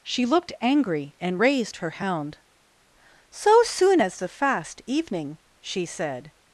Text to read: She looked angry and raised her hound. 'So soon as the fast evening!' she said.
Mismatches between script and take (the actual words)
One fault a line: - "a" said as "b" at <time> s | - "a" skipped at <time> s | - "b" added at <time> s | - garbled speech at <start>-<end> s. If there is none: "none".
none